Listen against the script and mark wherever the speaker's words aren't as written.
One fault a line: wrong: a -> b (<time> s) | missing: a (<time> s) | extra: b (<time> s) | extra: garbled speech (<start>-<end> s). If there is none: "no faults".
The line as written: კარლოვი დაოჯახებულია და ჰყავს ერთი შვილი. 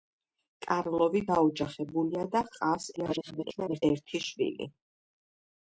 extra: garbled speech (3.0-3.8 s)